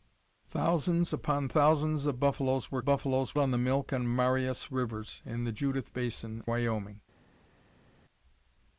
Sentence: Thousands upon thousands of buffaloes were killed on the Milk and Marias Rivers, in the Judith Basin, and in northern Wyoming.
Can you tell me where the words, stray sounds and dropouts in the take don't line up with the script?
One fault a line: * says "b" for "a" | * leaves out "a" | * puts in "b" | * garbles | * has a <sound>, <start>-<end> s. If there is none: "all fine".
* says "buffaloes" for "killed"
* leaves out "and in northern"